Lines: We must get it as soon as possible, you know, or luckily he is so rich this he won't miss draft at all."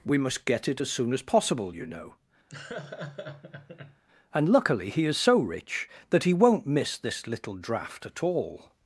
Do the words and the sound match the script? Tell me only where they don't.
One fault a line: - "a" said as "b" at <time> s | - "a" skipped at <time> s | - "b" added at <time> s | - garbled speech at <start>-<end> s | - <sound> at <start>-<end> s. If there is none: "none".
- laugh at 2.5-4.0 s
- "or" said as "and" at 4.3 s
- "this" said as "that" at 6.1 s
- "this little" added at 7.0 s